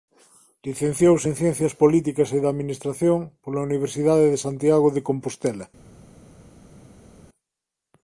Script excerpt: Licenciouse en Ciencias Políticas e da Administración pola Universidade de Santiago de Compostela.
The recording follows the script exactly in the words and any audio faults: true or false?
true